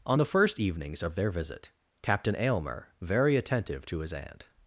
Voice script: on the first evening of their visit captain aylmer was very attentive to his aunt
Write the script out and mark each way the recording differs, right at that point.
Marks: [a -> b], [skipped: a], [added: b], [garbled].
on the first [evening -> evenings] of their visit captain aylmer [skipped: was] very attentive to his aunt